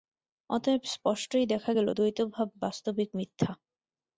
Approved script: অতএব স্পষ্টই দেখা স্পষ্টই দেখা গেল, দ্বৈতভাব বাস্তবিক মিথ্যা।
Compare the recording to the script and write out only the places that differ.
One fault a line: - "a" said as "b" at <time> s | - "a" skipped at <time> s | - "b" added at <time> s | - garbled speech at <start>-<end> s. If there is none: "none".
- "স্পষ্টই দেখা" skipped at 1.7 s